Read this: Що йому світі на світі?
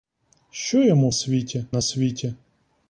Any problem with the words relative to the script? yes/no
no